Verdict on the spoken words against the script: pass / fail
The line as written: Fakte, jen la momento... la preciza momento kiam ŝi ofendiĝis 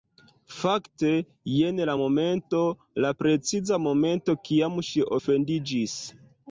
pass